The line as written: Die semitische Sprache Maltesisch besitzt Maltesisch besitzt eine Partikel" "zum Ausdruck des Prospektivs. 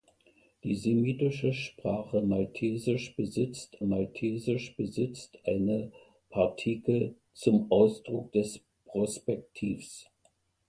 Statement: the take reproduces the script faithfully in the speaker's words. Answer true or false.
true